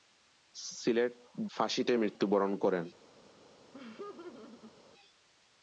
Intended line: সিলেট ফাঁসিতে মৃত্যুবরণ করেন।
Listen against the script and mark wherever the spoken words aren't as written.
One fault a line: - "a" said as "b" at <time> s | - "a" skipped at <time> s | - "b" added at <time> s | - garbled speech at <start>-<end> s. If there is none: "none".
none